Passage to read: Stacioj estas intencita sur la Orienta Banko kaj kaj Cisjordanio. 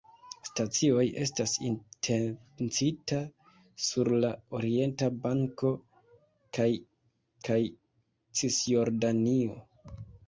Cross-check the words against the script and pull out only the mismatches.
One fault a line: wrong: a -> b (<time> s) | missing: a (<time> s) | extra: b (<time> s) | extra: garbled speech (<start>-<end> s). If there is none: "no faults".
no faults